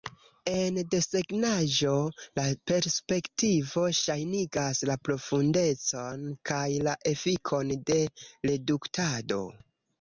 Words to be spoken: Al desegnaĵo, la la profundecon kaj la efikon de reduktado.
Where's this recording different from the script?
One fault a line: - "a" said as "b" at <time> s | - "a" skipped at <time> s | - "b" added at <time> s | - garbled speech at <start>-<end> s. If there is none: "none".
- "Al" said as "En" at 0.5 s
- "perspektivo ŝajnigas" added at 2.7 s